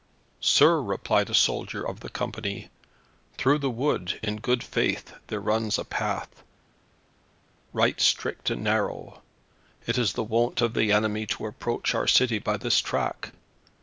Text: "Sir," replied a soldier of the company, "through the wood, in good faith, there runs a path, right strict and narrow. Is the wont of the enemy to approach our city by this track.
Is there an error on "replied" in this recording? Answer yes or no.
no